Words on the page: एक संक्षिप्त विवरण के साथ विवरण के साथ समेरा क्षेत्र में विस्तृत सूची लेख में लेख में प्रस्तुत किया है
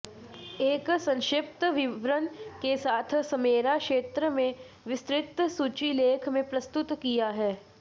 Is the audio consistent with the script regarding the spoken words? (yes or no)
no